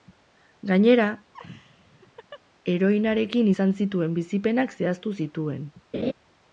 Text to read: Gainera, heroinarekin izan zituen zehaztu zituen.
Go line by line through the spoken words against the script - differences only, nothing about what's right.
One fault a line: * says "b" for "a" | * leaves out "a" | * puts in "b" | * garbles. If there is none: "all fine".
* puts in "bizipenak"